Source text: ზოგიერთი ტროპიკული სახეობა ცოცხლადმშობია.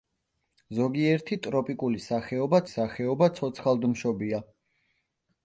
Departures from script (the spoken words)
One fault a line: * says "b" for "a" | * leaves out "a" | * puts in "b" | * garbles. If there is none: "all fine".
* puts in "სახეობა"